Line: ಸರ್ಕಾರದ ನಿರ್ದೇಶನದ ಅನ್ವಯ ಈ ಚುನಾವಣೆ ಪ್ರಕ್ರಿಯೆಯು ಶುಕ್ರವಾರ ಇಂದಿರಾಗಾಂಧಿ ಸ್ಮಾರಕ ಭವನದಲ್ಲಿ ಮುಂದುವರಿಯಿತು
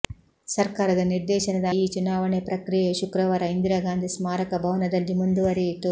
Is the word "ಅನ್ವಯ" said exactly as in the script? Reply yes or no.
no